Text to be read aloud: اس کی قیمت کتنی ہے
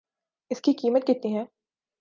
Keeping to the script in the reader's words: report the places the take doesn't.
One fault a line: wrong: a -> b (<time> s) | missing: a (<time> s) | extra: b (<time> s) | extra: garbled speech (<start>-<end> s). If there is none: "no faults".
no faults